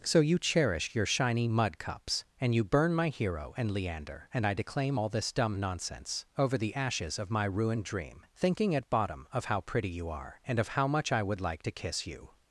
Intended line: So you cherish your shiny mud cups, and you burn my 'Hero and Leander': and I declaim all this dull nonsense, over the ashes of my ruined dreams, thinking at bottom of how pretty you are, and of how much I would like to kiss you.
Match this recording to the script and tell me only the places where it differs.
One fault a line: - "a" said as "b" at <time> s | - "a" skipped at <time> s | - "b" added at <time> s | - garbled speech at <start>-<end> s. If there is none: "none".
- "dull" said as "dumb" at 5.3 s
- "dreams" said as "dream" at 7.8 s